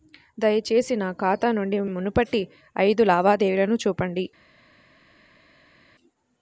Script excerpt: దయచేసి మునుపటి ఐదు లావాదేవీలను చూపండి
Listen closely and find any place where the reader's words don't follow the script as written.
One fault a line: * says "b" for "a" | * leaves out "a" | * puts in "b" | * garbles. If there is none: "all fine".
* puts in "నా ఖాతా నుండి"